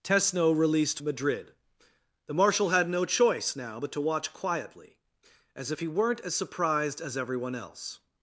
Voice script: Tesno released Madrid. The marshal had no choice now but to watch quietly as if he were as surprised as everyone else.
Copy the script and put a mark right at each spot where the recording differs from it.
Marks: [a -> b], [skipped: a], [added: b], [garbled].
Tesno released Madrid. The marshal had no choice now but to watch quietly as if he [were -> weren't] as surprised as everyone else.